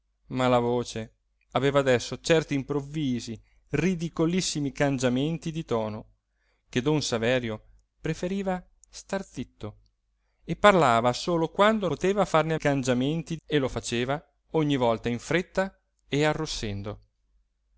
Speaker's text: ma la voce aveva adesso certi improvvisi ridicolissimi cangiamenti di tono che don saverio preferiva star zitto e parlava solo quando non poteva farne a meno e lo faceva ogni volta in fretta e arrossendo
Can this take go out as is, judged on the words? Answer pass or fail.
fail